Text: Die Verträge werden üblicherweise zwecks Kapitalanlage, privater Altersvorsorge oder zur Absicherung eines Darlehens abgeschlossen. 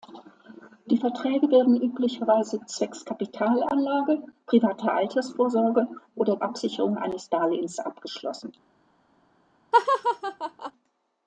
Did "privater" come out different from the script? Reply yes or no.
no